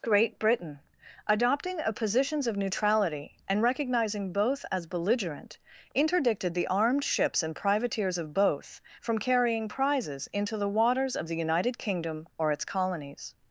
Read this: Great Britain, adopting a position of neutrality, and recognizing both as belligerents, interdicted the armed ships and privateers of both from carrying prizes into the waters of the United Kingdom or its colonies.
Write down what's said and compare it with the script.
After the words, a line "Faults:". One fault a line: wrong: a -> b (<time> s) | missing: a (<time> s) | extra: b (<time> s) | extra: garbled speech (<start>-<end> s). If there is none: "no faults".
Great Britain, adopting a positions of neutrality, and recognizing both as belligerent, interdicted the armed ships and privateers of both from carrying prizes into the waters of the United Kingdom or its colonies.
Faults:
wrong: position -> positions (1.9 s)
wrong: belligerents -> belligerent (4.9 s)